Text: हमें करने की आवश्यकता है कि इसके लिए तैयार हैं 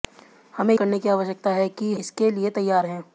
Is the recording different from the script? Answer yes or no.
no